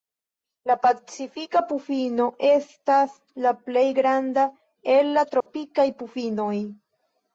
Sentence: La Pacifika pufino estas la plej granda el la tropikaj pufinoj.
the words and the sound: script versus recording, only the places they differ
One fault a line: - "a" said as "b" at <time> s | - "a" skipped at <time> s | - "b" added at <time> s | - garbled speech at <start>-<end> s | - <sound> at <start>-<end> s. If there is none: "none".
- dropout at 5.4-5.5 s